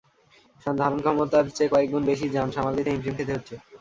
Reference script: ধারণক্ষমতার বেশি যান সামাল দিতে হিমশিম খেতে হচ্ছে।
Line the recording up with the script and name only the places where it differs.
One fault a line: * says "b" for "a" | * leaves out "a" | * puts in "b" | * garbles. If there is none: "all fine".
* puts in "চেয়ে কয়েক গুণ"